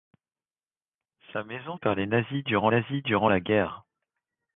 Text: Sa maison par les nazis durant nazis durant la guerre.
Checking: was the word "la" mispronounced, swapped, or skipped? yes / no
no